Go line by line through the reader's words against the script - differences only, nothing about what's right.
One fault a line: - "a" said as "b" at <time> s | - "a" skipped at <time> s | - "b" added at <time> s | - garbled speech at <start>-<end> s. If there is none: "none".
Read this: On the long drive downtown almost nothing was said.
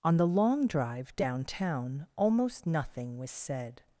none